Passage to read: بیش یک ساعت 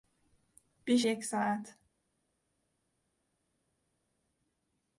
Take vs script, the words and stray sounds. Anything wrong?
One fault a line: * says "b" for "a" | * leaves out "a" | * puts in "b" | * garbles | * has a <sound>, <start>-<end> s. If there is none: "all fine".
all fine